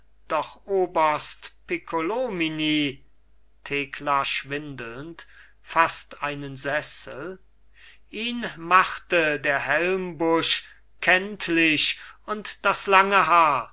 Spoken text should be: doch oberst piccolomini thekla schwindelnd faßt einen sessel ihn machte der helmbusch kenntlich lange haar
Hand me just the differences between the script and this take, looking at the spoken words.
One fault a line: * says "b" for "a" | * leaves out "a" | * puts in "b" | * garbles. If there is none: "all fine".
* puts in "und das"